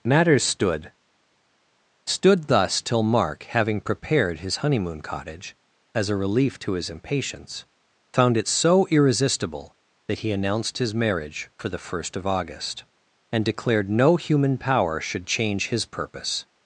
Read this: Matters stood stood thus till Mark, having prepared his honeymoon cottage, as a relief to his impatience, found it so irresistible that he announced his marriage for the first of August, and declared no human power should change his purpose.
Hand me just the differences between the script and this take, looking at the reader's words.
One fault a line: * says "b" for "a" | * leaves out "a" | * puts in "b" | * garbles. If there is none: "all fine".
all fine